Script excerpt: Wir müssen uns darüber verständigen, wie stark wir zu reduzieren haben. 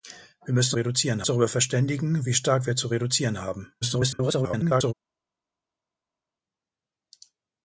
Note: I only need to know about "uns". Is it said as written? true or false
false